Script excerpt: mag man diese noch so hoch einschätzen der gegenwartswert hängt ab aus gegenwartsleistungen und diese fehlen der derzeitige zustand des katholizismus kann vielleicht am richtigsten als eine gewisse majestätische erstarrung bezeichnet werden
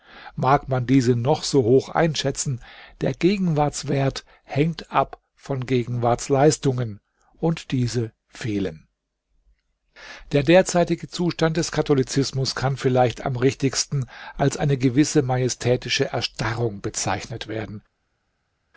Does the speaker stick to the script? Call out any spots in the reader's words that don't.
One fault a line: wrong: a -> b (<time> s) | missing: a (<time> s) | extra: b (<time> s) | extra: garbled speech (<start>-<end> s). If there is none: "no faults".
wrong: aus -> von (5.3 s)